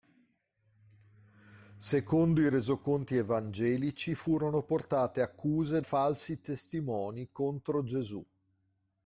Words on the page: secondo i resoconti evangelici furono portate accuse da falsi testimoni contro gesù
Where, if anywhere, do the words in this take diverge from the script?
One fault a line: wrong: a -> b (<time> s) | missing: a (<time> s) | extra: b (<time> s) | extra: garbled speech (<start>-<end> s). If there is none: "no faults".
missing: da (5.8 s)